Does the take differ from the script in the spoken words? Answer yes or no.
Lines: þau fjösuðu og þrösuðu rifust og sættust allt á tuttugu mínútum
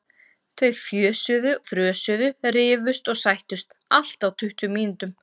yes